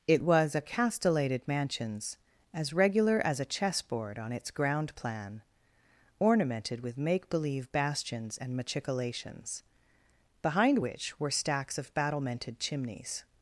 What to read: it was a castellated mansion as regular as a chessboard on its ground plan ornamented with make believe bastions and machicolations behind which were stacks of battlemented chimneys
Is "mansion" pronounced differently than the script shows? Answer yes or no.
yes